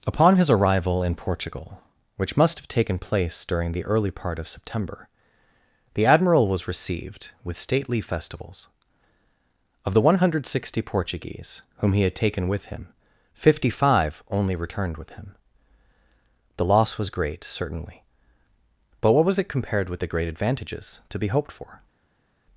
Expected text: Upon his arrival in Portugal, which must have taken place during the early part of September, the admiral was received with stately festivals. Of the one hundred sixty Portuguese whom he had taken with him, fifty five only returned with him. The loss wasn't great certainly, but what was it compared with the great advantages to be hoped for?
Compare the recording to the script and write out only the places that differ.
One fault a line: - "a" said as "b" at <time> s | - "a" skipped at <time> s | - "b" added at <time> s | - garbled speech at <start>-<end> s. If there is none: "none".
- "wasn't" said as "was" at 17.0 s